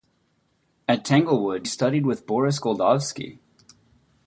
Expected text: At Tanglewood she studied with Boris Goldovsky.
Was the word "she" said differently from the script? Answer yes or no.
yes